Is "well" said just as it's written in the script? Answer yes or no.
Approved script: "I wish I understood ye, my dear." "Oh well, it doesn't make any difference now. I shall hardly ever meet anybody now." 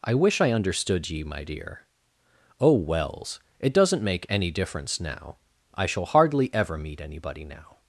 no